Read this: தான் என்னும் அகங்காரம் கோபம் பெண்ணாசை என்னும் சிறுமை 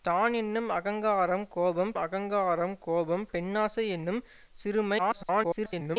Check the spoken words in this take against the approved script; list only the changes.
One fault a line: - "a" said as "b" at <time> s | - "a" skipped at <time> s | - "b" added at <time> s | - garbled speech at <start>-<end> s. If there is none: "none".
- "அகங்காரம் கோபம்" added at 2.0 s
- garbled speech at 5.0-6.0 s